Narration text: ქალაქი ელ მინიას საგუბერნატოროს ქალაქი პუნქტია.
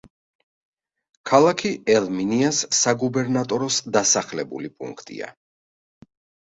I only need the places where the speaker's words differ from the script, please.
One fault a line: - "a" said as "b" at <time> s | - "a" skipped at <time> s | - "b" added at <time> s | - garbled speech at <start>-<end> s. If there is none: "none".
- "ქალაქი" said as "დასახლებული" at 4.0 s